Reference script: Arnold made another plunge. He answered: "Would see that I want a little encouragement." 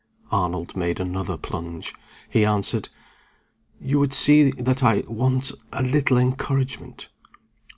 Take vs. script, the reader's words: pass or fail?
fail